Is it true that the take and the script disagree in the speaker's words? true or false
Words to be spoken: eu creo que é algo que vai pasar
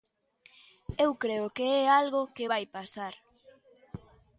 false